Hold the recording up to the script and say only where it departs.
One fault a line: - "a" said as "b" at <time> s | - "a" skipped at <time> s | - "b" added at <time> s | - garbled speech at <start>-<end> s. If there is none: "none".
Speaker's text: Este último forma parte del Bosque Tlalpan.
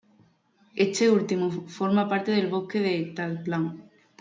- "de" added at 2.8 s